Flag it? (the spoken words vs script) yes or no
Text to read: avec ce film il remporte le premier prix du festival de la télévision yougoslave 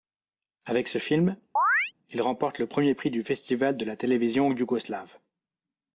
no